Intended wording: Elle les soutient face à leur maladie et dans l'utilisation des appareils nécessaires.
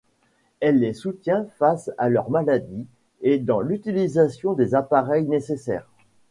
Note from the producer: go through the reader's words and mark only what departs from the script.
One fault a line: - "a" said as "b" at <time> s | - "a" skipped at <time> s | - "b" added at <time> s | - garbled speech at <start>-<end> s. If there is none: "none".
none